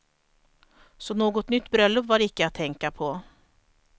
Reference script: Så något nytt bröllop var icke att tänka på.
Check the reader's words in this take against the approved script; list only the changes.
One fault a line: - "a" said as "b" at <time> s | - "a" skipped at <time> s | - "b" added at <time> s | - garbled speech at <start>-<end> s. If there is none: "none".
none